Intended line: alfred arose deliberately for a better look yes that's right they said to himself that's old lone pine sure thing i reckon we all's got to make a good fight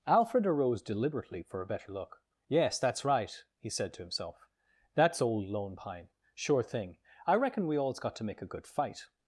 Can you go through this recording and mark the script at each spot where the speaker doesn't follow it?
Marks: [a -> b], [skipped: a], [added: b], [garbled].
alfred arose deliberately for a better look yes that's right [they -> he] said to himself that's old lone pine sure thing i reckon we all's got to make a good fight